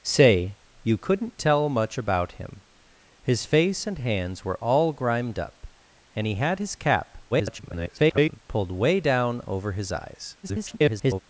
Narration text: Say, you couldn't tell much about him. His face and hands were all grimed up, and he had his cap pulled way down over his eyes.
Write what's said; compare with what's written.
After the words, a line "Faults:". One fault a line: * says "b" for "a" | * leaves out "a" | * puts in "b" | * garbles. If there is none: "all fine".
Say, you couldn't tell much about him. His face and hands were all grimed up, and he had his cap [garbled] pulled way down over his eyes. [garbled]
Faults:
* garbles
* garbles